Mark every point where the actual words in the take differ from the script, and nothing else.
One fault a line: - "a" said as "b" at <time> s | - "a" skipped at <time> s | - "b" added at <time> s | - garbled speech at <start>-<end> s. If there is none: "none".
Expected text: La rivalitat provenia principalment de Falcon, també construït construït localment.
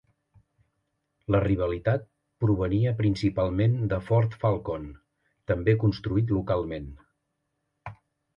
- "Ford" added at 4.1 s
- "construït" skipped at 6.3 s